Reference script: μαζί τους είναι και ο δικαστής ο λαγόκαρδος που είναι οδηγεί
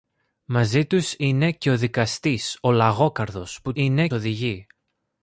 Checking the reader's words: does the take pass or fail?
pass